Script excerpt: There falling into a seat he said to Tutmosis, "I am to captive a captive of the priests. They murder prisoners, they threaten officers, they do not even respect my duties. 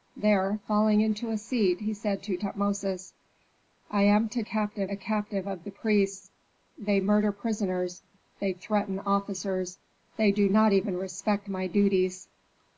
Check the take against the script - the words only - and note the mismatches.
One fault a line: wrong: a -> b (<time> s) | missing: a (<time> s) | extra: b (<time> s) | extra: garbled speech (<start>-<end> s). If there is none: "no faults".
no faults